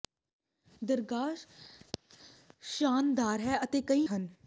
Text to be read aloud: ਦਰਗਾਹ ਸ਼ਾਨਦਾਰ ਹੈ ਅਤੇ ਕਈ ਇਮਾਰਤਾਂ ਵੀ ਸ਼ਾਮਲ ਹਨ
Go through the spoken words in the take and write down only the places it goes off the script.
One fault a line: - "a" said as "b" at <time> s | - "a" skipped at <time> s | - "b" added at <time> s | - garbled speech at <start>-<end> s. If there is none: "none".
- "ਇਮਾਰਤਾਂ ਵੀ ਸ਼ਾਮਲ" skipped at 4.1 s